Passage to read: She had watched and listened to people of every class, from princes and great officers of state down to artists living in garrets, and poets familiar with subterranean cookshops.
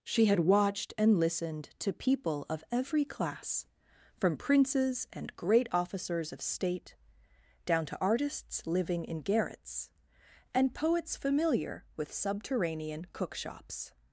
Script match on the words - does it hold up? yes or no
yes